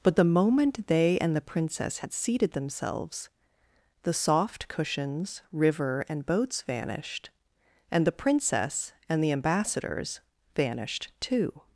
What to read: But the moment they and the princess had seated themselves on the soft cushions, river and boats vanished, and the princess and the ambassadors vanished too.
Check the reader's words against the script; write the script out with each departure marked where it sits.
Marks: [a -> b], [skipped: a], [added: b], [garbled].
But the moment they and the princess had seated themselves [skipped: on] the soft cushions, river and boats vanished, and the princess and the ambassadors vanished too.